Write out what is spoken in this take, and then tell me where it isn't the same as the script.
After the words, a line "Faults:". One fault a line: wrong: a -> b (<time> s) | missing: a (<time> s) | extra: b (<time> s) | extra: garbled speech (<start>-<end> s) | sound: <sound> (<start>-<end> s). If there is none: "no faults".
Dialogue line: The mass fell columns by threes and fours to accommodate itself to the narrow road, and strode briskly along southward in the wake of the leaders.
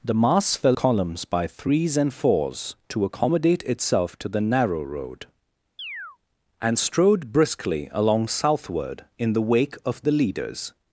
The mass fell columns by threes and fours to accommodate itself to the narrow road, and strode briskly along southward in the wake of the leaders.
Faults:
sound: chirp (5.8-6.2 s)